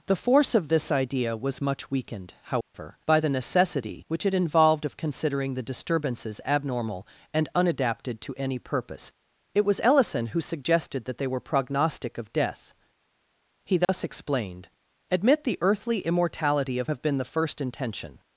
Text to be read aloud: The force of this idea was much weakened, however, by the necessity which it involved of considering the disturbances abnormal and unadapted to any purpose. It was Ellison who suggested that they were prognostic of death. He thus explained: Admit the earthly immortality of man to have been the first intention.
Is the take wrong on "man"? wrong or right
wrong